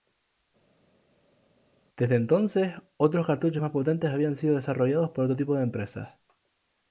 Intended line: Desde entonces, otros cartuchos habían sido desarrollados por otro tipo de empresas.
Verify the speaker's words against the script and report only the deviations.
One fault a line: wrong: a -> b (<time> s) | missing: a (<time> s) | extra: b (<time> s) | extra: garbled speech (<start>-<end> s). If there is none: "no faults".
extra: más potentes (3.6 s)